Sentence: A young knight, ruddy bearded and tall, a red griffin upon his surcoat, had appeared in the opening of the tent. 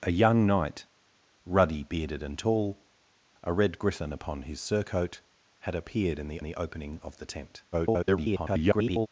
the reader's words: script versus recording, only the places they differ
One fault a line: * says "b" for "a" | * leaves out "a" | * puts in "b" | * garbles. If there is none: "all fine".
* puts in "the"
* garbles